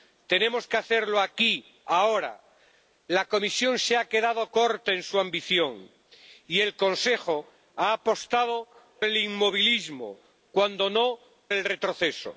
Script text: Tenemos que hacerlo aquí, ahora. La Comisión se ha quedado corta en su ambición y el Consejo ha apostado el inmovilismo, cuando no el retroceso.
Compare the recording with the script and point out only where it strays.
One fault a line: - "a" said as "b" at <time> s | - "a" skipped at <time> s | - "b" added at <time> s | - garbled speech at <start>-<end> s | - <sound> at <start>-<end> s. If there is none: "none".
none